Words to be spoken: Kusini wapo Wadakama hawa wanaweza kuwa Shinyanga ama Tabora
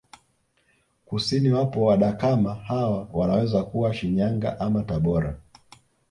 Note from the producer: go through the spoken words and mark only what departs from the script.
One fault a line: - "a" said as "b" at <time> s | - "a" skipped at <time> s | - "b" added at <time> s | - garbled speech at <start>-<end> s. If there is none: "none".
none